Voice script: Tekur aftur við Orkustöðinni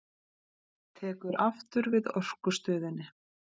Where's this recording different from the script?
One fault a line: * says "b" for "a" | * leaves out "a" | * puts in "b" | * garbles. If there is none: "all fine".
all fine